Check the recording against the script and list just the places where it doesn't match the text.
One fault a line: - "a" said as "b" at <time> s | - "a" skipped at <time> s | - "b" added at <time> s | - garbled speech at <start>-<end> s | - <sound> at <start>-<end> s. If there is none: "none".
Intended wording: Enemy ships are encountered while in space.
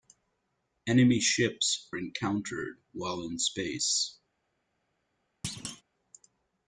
- "are" skipped at 1.9 s
- thud at 5.4-5.8 s